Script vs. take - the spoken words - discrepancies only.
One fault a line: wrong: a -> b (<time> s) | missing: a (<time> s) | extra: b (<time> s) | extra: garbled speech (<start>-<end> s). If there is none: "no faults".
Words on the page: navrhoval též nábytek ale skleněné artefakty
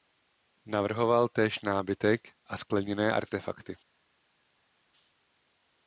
wrong: ale -> a (2.4 s)